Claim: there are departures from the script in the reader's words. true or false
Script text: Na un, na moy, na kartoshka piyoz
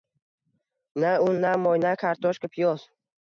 false